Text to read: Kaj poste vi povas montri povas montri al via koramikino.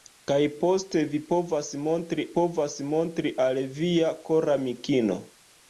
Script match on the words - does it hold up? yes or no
yes